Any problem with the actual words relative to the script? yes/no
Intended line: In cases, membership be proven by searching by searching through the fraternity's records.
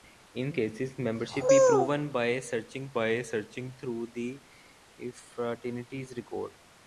no